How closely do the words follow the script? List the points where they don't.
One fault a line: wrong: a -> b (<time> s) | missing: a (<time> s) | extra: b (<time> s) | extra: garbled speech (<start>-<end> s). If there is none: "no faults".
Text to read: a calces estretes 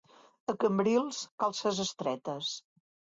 extra: cambrils (0.6 s)